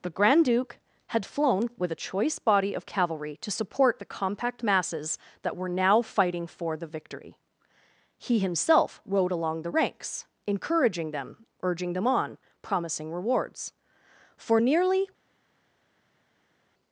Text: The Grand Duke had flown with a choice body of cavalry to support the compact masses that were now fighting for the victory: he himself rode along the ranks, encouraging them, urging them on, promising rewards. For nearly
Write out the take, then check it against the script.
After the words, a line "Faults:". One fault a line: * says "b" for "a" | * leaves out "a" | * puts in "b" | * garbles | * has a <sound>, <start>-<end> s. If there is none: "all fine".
The Grand Duke had flown with a choice body of cavalry to support the compact masses that were now fighting for the victory: he himself rode along the ranks, encouraging them, urging them on, promising rewards. For nearly
Faults:
all fine